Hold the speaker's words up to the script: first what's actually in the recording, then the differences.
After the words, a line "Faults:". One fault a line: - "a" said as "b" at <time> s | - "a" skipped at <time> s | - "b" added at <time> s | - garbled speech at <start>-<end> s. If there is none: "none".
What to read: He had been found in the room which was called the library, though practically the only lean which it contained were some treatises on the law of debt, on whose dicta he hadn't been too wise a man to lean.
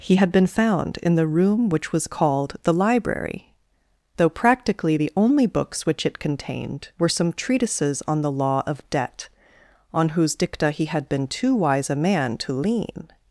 He had been found in the room which was called the library, though practically the only books which it contained were some treatises on the law of debt, on whose dicta he had been too wise a man to lean.
Faults:
- "lean" said as "books" at 5.5 s
- "hadn't" said as "had" at 10.8 s